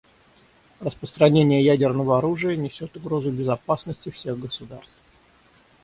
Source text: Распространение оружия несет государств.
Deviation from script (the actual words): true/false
true